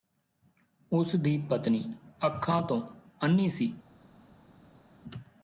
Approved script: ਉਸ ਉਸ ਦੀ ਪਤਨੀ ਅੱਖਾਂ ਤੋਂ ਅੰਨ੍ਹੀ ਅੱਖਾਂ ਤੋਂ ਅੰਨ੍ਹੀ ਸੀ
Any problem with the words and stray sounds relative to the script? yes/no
yes